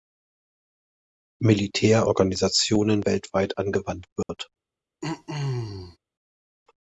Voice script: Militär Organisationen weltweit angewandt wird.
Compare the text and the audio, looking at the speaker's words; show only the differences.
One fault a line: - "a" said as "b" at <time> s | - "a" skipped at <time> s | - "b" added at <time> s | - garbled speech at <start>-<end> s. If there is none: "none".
none